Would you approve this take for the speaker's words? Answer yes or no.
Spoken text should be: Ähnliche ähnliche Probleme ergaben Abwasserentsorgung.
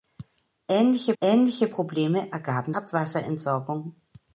yes